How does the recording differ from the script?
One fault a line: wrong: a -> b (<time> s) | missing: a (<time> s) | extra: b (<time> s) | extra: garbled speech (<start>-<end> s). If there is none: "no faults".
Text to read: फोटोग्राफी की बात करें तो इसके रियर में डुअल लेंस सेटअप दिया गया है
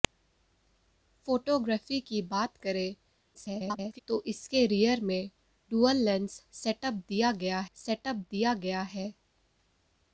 extra: garbled speech (3.3-4.0 s)
extra: सेटअप दिया गया (7.8 s)